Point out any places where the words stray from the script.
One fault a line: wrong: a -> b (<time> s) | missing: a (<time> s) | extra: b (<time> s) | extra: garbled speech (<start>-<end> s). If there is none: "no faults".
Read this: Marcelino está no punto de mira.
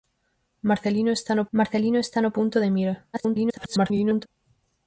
extra: marcelino está no (1.5 s)
extra: garbled speech (3.1-4.3 s)